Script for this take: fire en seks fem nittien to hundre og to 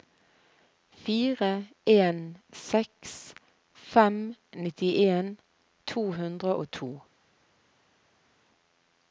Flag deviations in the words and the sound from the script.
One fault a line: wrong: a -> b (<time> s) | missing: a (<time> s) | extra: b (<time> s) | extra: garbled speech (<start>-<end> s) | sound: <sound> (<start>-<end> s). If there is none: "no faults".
no faults